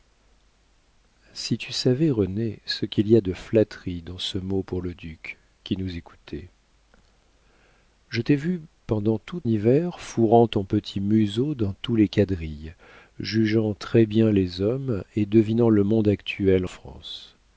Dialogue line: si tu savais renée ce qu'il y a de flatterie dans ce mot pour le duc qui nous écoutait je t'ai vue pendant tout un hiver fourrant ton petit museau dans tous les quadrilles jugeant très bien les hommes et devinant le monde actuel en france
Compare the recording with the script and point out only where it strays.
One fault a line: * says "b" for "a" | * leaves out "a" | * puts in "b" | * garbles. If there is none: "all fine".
* leaves out "un"
* leaves out "en"